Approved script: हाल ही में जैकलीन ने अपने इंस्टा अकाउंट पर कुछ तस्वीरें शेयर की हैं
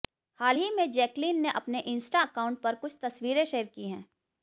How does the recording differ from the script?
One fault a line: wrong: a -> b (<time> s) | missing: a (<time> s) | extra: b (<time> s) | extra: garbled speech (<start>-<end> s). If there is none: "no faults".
no faults